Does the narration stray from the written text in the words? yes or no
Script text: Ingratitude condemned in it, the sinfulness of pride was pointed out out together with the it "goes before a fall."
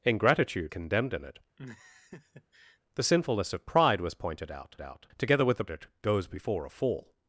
no